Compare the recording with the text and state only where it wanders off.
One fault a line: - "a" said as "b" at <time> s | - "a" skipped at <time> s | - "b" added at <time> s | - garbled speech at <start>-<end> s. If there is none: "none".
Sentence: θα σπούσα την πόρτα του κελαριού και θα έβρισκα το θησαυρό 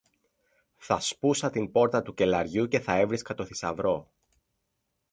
none